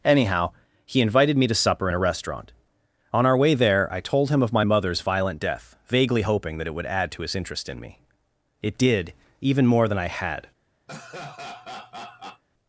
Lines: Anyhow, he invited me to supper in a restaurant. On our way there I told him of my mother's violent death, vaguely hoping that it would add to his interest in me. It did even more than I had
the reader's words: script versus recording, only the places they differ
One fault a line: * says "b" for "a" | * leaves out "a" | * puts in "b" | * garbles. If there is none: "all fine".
all fine